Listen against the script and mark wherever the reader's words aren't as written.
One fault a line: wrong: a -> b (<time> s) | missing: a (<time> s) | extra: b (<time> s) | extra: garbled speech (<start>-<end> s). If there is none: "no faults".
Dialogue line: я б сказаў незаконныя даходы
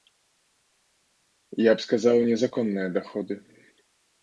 no faults